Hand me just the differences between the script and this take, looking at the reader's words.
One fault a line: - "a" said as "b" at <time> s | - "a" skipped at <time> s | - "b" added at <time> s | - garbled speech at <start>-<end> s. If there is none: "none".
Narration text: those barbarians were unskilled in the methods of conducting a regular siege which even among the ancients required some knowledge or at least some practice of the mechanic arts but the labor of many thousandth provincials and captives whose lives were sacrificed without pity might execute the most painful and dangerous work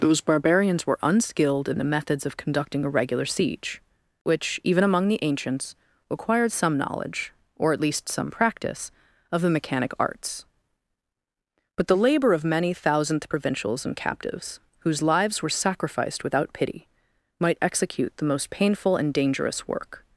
none